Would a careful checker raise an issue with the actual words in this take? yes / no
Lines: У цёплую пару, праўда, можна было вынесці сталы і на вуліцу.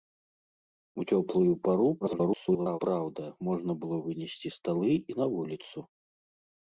yes